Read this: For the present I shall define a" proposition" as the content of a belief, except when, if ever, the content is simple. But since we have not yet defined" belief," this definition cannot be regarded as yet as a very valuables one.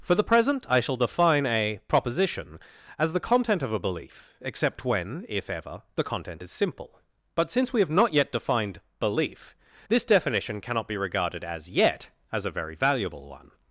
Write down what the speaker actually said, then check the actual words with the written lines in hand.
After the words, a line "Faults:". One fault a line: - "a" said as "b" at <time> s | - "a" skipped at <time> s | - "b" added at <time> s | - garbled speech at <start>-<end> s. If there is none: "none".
For the present I shall define a" proposition" as the content of a belief, except when, if ever, the content is simple. But since we have not yet defined" belief," this definition cannot be regarded as yet as a very valuable one.
Faults:
- "valuables" said as "valuable" at 12.7 s